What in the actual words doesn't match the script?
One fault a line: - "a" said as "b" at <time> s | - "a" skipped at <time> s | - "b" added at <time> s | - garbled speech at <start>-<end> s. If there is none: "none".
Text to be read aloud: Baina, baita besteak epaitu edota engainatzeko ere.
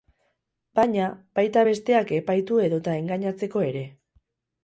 none